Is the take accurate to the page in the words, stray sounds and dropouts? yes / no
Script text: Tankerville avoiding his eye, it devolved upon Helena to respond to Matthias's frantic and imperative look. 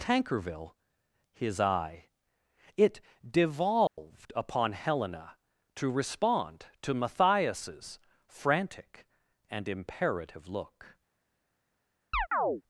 no